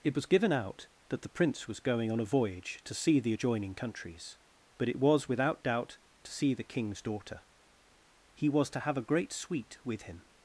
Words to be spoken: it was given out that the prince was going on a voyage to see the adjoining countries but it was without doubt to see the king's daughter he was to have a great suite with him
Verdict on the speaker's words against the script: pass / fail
pass